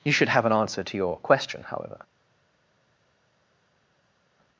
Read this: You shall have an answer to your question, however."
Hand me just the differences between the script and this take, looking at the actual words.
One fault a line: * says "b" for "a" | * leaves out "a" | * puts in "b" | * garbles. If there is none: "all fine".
* says "should" for "shall"